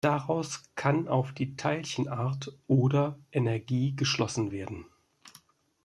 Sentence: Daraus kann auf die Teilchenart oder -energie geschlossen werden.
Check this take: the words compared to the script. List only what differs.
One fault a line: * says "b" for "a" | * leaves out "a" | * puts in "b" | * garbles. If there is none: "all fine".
all fine